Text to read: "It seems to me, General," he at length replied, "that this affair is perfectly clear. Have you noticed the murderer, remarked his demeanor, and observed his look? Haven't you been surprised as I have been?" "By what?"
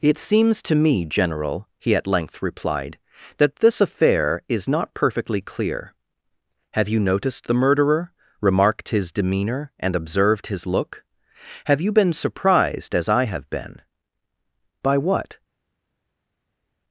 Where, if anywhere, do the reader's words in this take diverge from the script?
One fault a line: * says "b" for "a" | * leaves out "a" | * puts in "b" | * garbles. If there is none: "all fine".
* puts in "not"
* says "Have" for "Haven't"